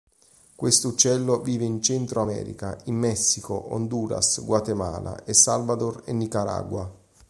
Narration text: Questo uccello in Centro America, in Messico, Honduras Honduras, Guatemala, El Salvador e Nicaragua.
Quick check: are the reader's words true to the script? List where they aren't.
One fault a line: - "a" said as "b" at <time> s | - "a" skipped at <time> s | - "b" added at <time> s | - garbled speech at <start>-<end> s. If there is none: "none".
- "vive" added at 1.4 s
- "Honduras" skipped at 4.4 s